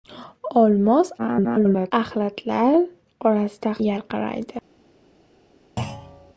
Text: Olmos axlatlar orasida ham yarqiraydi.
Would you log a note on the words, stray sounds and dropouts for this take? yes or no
yes